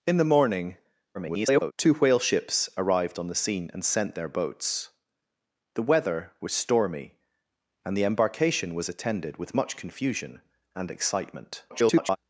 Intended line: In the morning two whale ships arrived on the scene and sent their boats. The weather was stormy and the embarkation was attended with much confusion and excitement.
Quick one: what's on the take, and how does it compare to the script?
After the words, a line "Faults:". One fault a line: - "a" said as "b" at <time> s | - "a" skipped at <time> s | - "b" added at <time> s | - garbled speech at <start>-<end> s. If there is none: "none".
In the morning [garbled] two whale ships arrived on the scene and sent their boats. The weather was stormy and the embarkation was attended with much confusion and excitement. [garbled]
Faults:
- garbled speech at 1.1-1.7 s
- garbled speech at 11.7-12.2 s